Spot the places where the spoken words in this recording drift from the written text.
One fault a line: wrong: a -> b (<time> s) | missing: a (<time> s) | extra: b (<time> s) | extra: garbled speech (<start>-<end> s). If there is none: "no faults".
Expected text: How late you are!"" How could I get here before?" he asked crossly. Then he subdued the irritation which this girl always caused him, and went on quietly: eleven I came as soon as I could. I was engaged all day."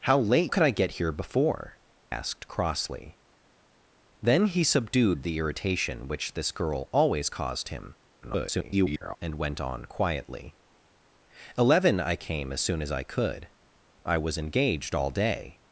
missing: you are How (0.5 s)
missing: he (1.8 s)
extra: garbled speech (8.2-9.2 s)